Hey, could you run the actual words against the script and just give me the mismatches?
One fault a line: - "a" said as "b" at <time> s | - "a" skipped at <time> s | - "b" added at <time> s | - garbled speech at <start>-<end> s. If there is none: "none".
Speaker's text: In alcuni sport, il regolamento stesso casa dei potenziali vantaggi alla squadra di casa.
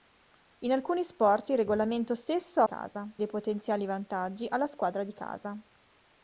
none